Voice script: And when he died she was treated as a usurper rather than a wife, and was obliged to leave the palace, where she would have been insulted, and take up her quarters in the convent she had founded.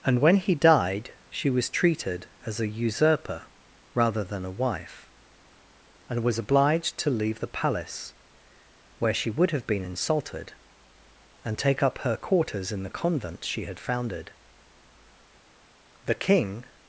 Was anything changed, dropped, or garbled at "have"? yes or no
no